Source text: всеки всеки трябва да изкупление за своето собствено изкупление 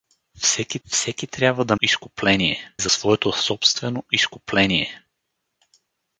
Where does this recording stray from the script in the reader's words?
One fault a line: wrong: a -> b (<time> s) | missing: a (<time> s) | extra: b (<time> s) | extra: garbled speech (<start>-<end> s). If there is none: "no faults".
no faults